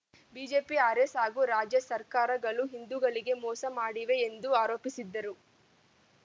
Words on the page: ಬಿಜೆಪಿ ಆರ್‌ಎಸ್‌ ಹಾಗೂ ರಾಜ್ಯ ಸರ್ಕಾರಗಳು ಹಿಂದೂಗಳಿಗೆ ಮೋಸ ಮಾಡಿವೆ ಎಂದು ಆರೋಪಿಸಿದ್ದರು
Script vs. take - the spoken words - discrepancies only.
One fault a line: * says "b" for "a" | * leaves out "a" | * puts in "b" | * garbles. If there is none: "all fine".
all fine